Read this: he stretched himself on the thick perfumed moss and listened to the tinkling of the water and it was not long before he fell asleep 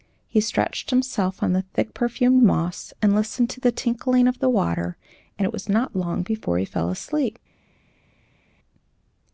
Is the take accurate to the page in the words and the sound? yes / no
yes